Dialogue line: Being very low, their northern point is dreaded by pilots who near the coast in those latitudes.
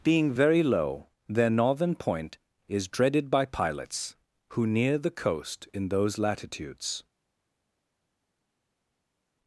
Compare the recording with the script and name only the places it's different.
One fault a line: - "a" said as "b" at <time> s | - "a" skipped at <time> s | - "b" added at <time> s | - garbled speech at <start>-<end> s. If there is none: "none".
none